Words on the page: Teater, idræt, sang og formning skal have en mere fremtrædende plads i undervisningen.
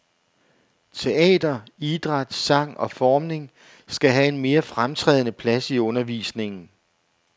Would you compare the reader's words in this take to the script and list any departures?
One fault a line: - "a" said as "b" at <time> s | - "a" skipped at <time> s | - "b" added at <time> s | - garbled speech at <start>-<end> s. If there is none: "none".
none